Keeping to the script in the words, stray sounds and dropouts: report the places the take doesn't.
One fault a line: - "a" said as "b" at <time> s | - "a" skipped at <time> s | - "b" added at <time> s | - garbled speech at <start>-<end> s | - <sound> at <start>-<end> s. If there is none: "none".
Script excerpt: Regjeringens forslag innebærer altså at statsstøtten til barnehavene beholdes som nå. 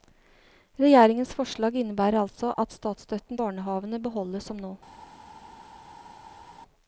- "til" skipped at 3.4 s